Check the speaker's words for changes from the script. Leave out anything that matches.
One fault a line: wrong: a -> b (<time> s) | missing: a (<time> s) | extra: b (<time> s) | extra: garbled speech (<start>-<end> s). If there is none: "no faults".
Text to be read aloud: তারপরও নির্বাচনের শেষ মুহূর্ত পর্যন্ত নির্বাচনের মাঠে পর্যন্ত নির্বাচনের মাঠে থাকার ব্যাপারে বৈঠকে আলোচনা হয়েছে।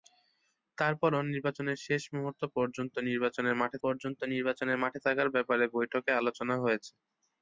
no faults